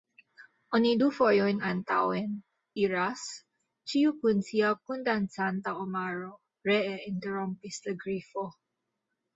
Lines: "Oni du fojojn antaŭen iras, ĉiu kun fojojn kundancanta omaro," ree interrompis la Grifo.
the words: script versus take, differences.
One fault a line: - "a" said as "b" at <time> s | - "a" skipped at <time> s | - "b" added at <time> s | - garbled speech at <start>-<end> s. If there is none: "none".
- "fojojn" said as "sia" at 4.5 s